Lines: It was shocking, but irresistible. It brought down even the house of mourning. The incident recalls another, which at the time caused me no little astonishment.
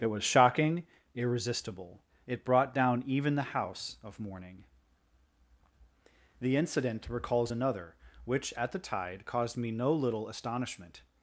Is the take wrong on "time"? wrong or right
wrong